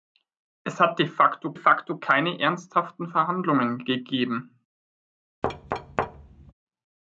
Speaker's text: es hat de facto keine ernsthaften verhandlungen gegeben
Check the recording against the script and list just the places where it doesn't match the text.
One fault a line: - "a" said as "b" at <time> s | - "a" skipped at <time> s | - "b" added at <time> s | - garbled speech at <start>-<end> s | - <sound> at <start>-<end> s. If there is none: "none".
- "facto" added at 1.5 s
- thud at 5.4-6.5 s